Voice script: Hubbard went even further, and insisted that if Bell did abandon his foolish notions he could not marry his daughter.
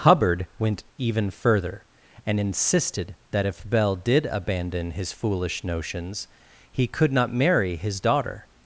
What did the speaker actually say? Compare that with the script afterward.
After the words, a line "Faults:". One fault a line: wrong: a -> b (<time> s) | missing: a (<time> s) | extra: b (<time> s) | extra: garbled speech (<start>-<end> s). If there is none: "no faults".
Hubbard went even further, and insisted that if Bell did abandon his foolish notions he could not marry his daughter.
Faults:
no faults